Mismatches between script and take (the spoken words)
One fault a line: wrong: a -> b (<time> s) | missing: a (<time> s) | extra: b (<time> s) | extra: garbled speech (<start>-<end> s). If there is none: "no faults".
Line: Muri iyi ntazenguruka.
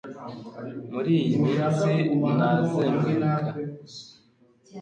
extra: minsi (1.4 s)